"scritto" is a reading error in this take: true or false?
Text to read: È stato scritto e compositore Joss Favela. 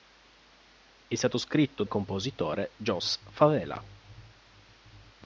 false